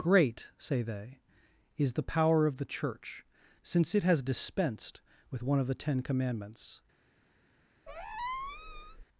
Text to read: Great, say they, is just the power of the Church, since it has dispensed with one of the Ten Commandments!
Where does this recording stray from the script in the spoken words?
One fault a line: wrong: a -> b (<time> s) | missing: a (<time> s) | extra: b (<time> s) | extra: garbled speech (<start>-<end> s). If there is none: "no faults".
missing: just (1.9 s)